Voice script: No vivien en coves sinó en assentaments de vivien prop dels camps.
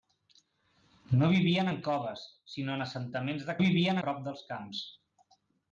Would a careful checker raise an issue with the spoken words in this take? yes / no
no